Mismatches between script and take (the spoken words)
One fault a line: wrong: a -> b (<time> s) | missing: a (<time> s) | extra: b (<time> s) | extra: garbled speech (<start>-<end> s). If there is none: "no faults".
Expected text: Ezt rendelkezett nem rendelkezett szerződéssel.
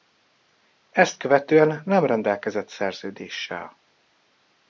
wrong: rendelkezett -> követően (1.2 s)